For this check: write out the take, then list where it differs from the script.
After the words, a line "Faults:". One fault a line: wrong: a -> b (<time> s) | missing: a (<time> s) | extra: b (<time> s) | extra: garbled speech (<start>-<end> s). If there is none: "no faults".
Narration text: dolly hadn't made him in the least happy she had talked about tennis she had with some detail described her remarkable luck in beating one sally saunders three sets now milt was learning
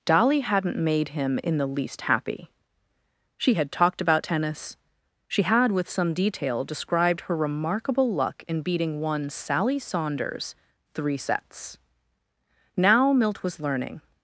dolly hadn't made him in the least happy she had talked about tennis she had with some detail described her remarkable luck in beating one sally saunders three sets now milt was learning
Faults:
no faults